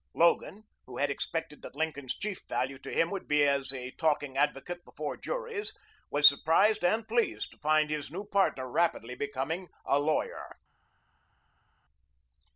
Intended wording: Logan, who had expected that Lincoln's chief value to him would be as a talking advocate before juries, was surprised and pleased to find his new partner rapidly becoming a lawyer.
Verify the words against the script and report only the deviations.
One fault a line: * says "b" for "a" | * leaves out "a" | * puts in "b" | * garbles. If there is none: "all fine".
all fine